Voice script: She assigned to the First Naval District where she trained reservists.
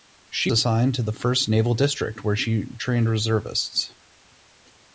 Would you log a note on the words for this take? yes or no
no